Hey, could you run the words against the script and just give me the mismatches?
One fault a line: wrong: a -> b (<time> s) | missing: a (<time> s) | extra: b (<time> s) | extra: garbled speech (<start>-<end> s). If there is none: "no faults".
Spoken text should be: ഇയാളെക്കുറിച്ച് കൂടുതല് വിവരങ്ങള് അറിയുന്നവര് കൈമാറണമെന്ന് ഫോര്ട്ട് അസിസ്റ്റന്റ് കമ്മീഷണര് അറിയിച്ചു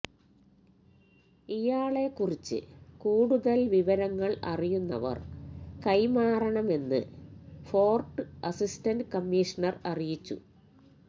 no faults